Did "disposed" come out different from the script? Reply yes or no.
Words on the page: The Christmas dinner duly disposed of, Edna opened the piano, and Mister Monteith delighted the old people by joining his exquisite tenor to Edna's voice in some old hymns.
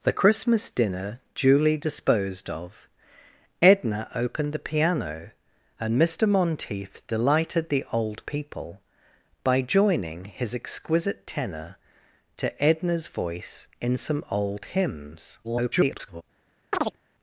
no